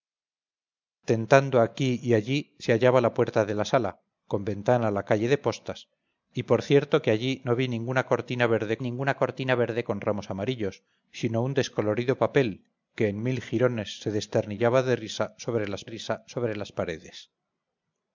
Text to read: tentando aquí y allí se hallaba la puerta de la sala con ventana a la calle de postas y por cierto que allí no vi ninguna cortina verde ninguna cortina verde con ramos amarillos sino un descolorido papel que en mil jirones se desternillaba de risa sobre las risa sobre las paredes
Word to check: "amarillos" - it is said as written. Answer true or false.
true